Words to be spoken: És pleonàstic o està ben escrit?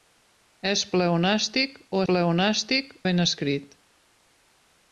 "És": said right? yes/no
yes